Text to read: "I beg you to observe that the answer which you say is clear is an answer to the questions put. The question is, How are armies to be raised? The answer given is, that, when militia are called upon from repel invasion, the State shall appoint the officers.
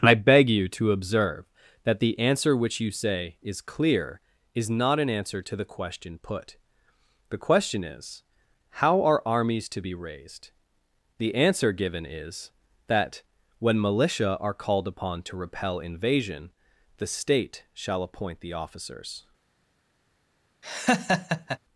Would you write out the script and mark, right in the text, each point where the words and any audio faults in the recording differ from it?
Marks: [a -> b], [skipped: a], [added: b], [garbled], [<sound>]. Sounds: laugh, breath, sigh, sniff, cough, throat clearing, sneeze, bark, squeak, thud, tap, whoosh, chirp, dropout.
"I beg you to observe that the answer which you say is clear is [added: not] an answer to the [questions -> question] put. The question is, How are armies to be raised? The answer given is, that, when militia are called upon [from -> to] repel invasion, the State shall appoint the officers. [laugh]